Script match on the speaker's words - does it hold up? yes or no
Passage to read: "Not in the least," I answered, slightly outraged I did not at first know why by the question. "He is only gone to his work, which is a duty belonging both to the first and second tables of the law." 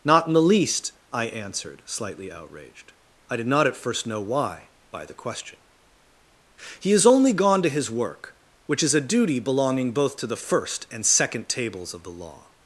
yes